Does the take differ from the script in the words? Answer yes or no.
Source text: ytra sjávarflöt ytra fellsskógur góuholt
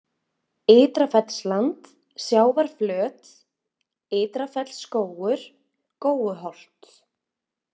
yes